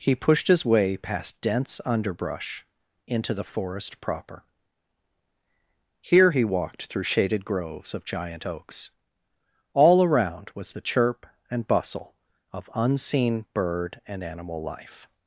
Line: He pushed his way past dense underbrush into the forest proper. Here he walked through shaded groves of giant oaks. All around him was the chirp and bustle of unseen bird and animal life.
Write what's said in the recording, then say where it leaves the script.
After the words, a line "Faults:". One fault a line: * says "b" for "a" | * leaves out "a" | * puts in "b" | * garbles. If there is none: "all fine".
He pushed his way past dense underbrush into the forest proper. Here he walked through shaded groves of giant oaks. All around was the chirp and bustle of unseen bird and animal life.
Faults:
* leaves out "him"